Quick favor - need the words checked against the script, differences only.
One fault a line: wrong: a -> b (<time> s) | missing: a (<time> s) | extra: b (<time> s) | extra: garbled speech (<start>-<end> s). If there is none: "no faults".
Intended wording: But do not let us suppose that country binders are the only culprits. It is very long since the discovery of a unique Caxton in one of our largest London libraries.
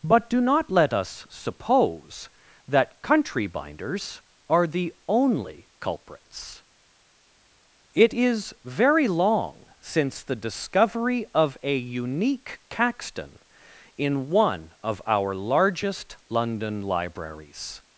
no faults